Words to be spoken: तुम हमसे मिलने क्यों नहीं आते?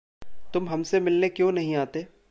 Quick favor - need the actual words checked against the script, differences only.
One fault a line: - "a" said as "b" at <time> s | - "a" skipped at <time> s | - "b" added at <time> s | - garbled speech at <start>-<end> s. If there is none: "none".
none